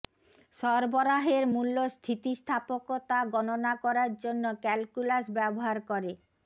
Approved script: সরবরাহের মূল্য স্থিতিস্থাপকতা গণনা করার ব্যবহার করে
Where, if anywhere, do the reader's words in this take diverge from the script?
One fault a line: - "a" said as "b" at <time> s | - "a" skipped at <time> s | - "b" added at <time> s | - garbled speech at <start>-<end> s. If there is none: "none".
- "জন্য ক্যালকুলাস" added at 4.2 s